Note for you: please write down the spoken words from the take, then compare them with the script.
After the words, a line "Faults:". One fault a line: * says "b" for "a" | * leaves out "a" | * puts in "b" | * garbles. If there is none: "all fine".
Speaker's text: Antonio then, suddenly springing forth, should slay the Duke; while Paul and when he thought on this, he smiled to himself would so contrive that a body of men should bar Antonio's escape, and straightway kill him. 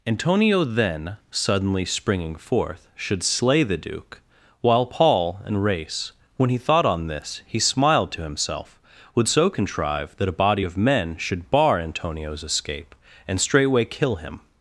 Antonio then, suddenly springing forth, should slay the Duke; while Paul and race when he thought on this, he smiled to himself would so contrive that a body of men should bar Antonio's escape, and straightway kill him.
Faults:
* puts in "race"